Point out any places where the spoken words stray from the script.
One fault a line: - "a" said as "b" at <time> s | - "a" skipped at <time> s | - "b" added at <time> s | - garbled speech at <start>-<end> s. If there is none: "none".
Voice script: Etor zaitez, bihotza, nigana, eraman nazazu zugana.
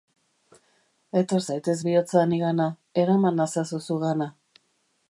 none